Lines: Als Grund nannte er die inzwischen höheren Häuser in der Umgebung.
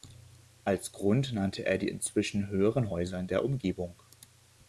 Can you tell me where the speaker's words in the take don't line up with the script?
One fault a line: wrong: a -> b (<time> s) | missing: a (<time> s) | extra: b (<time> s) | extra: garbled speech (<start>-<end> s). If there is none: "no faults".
no faults